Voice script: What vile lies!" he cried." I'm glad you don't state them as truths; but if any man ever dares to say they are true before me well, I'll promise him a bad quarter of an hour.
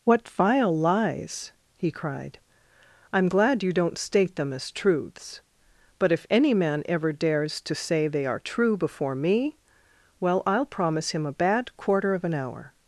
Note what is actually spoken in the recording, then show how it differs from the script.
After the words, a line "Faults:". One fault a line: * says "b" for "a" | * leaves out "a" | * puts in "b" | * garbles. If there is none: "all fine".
What vile lies!" he cried." I'm glad you don't state them as truths; but if any man ever dares to say they are true before me well, I'll promise him a bad quarter of an hour.
Faults:
all fine